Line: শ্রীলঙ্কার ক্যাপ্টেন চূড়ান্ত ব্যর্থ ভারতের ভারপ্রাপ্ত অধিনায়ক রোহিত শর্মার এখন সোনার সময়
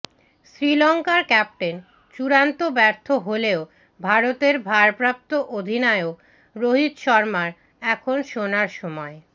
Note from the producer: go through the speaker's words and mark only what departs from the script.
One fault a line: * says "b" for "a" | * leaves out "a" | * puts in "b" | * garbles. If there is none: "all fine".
* puts in "হলেও"